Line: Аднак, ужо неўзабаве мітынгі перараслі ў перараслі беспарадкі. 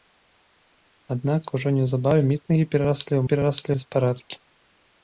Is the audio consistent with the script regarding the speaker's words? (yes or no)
yes